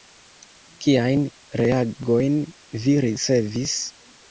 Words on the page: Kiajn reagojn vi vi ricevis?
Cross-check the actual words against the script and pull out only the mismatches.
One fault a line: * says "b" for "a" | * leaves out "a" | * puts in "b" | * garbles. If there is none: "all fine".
* leaves out "vi"